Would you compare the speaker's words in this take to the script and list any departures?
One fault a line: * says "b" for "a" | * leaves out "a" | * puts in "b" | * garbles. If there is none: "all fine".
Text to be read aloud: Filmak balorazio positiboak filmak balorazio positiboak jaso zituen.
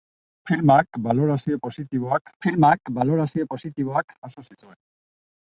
all fine